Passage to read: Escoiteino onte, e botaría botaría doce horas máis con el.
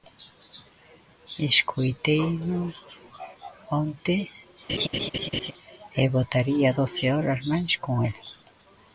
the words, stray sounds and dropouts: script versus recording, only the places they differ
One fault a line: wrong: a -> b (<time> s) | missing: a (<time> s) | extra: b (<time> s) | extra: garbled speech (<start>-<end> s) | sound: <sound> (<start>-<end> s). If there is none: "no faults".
sound: laugh (4.7-5.5 s)
missing: botaría (6.7 s)